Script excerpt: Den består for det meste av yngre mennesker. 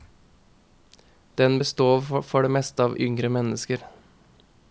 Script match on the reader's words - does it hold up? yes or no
yes